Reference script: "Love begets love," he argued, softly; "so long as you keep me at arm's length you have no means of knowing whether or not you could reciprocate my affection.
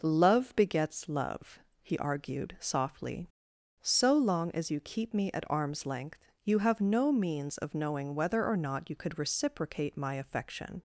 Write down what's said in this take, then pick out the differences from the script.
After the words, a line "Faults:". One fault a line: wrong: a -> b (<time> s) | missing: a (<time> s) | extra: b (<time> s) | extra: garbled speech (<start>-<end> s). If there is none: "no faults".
"Love begets love," he argued, softly; "so long as you keep me at arm's length you have no means of knowing whether or not you could reciprocate my affection.
Faults:
no faults